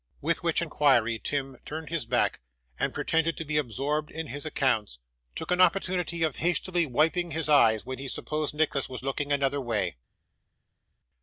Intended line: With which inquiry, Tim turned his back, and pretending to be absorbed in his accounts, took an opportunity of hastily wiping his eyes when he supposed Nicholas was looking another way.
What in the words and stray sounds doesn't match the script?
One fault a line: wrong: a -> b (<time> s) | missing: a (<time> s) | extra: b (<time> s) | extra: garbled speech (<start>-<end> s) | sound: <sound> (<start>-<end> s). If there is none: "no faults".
no faults